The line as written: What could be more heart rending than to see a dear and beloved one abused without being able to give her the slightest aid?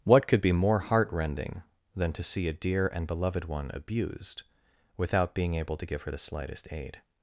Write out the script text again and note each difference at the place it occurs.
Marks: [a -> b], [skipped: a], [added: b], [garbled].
What could be more heart rending than to see a dear and beloved one abused without being able to give her the slightest aid?